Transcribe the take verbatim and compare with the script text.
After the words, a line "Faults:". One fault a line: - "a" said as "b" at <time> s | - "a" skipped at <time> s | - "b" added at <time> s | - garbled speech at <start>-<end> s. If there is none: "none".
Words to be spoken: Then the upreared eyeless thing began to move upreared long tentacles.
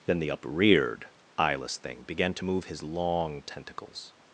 Then the upreared eyeless thing began to move his long tentacles.
Faults:
- "upreared" said as "his" at 2.7 s